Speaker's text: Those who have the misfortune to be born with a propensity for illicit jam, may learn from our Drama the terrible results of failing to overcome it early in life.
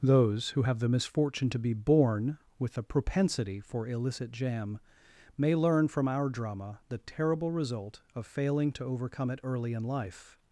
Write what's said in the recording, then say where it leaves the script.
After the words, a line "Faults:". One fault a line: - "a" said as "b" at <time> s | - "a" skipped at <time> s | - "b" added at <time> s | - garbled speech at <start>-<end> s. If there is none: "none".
Those who have the misfortune to be born with a propensity for illicit jam, may learn from our Drama the terrible result of failing to overcome it early in life.
Faults:
- "results" said as "result" at 7.5 s